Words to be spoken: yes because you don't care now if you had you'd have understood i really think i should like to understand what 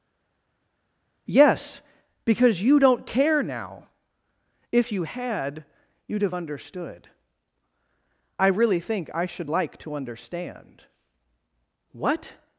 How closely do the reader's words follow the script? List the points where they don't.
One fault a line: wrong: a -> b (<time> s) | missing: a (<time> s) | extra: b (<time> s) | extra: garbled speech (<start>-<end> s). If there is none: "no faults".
no faults